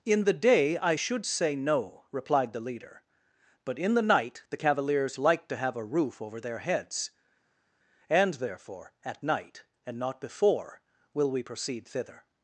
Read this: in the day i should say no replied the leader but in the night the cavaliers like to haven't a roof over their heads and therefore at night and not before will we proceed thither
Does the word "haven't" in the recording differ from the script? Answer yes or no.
yes